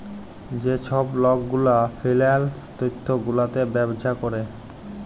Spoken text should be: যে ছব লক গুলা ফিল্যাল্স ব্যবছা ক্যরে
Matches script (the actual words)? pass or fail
fail